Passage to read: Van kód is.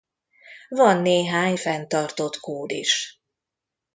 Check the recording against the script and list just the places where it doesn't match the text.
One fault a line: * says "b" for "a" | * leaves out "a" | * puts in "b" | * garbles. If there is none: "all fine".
* puts in "néhány fenntartott"